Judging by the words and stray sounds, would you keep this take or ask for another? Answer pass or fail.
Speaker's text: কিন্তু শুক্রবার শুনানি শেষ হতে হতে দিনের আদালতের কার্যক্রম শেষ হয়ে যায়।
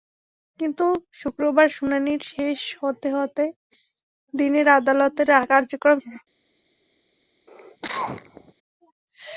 fail